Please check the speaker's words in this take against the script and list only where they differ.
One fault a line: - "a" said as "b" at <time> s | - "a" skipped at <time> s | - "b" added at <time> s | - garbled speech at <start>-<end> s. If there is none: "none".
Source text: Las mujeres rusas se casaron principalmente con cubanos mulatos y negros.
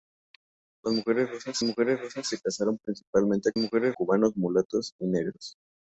- "mujeres rusas" added at 1.6 s
- "con" said as "mujeres" at 3.6 s